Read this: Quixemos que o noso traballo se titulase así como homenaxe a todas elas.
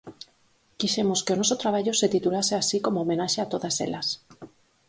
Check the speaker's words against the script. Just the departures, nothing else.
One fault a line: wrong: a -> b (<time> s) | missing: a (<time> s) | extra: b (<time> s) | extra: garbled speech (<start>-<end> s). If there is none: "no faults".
no faults